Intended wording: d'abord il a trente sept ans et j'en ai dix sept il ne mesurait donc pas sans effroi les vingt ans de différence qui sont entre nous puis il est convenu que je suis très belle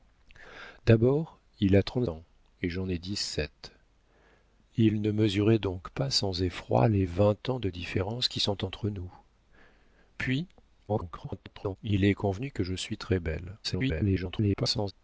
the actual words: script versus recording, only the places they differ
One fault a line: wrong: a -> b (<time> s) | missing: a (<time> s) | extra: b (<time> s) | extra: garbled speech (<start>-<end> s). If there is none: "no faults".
missing: sept (2.1 s)
extra: garbled speech (10.9-11.8 s)
extra: garbled speech (13.6-14.9 s)